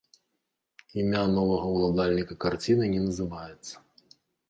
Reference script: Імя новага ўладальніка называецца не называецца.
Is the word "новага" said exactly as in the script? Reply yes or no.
yes